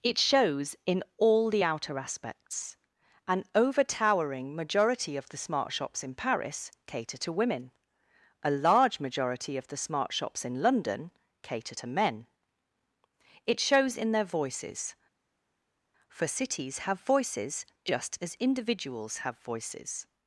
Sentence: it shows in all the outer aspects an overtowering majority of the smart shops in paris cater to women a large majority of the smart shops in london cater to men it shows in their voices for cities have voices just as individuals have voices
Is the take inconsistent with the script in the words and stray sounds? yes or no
no